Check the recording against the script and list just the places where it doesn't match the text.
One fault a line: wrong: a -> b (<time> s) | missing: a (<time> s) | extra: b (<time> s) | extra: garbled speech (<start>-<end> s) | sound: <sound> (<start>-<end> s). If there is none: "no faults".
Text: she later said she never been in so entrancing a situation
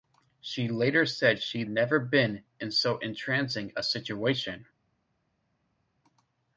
no faults